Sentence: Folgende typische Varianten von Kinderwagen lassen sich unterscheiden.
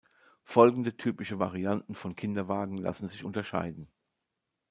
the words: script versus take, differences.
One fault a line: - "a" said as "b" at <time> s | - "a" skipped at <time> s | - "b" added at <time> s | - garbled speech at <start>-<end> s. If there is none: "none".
none